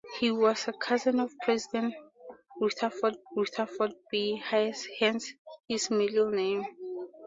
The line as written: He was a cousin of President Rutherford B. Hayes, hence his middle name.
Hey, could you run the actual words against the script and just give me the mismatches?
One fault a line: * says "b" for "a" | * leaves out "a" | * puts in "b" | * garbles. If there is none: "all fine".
* puts in "Rutherford"